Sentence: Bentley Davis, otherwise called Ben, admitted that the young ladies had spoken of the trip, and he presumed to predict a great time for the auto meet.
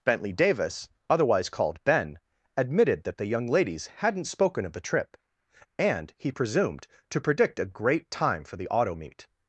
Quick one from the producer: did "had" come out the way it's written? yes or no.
no